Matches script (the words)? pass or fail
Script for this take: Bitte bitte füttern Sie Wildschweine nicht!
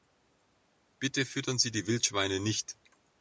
fail